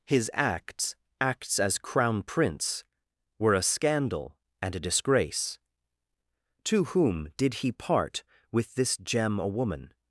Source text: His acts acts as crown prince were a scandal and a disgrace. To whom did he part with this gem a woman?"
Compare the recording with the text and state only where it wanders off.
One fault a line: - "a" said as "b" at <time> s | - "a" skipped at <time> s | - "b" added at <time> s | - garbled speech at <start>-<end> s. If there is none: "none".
none